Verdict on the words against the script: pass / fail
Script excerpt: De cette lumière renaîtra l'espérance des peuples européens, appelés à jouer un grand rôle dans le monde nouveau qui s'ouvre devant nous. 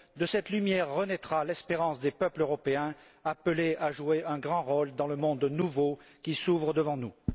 pass